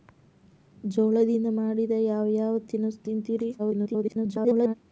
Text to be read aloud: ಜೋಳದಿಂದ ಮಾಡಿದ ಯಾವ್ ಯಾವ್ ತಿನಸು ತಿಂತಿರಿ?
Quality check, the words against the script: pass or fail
fail